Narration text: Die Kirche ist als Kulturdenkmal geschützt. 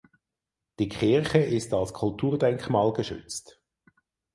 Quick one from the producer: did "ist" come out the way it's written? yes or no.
yes